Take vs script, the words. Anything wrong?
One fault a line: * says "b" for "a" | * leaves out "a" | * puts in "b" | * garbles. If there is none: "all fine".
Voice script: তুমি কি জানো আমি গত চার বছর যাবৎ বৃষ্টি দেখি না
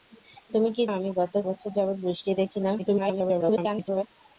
* leaves out "জানো"
* leaves out "চার"
* garbles